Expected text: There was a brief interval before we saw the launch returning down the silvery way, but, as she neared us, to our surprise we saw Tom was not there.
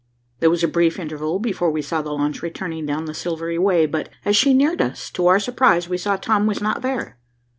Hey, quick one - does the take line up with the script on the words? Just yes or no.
yes